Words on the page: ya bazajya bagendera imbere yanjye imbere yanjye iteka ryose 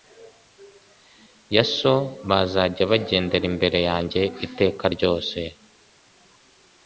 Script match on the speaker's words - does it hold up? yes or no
no